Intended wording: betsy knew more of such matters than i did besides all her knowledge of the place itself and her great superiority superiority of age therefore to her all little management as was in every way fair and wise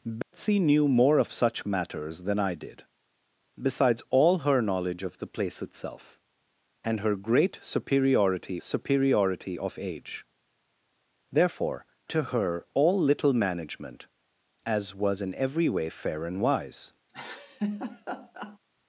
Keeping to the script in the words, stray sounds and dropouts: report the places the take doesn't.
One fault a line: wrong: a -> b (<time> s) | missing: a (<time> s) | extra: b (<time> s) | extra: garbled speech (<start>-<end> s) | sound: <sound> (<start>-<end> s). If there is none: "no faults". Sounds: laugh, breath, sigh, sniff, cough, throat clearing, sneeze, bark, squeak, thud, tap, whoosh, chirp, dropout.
sound: dropout (0.2-0.3 s)
sound: laugh (17.1-18.6 s)